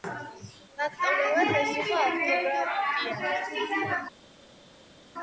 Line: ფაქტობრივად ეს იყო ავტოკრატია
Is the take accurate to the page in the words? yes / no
yes